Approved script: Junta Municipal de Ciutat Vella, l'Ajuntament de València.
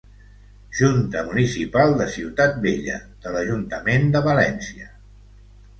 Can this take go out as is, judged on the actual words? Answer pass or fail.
fail